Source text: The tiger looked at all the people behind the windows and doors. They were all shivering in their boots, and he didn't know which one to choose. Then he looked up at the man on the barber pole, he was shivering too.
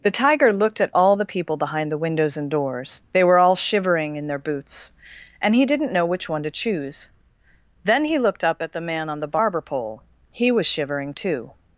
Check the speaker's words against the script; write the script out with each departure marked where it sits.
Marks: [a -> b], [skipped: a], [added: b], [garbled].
The tiger looked at all the people behind the windows and doors. They were all shivering in their boots, and he didn't know which one to choose. Then he looked up at the man on the barber pole, he was shivering too.